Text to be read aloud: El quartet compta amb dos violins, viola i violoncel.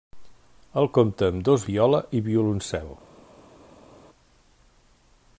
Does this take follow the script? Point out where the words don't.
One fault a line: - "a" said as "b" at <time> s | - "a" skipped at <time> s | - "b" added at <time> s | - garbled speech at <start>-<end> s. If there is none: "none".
- "quartet" skipped at 0.9 s
- "violins" skipped at 1.7 s